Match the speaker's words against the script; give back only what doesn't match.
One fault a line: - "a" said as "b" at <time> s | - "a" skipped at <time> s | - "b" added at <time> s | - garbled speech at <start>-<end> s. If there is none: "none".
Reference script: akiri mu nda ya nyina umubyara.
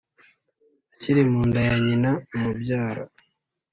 none